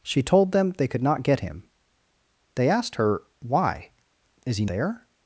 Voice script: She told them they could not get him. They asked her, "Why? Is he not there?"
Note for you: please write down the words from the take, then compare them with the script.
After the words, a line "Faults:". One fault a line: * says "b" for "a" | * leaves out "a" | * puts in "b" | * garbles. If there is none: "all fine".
She told them they could not get him. They asked her, "Why? Is he there?"
Faults:
* leaves out "not"